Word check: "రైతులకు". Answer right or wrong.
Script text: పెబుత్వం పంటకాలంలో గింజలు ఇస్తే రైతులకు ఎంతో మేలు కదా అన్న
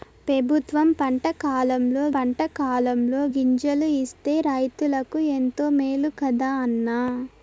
right